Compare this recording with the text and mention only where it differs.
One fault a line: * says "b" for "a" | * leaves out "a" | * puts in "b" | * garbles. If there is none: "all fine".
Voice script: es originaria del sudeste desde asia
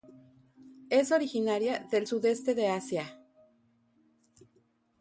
* says "de" for "desde"